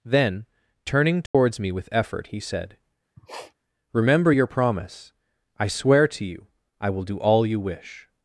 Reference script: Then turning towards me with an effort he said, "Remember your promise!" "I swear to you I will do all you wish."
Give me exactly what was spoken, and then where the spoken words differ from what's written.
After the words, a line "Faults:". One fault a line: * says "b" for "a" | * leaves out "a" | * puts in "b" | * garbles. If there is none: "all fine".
Then turning towards me with effort he said, "Remember your promise!" "I swear to you I will do all you wish."
Faults:
* leaves out "an"